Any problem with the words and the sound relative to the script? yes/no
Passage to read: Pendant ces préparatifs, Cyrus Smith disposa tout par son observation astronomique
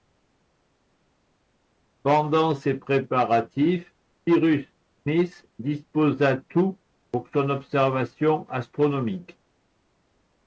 yes